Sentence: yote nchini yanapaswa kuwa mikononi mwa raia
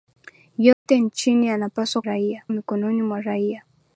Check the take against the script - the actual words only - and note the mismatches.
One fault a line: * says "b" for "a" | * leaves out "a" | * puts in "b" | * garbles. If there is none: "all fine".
* says "raia" for "kuwa"